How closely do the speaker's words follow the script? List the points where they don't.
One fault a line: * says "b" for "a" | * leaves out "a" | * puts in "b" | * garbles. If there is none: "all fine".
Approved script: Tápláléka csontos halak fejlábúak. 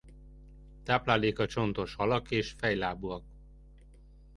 * puts in "és"